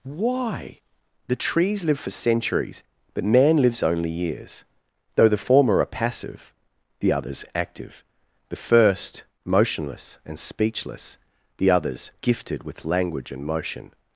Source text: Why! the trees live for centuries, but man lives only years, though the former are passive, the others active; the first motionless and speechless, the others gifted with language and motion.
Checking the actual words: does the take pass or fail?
pass